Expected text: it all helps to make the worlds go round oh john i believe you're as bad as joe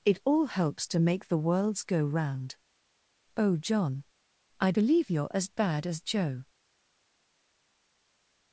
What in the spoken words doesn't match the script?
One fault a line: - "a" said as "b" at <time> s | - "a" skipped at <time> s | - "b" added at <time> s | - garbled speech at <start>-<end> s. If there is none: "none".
none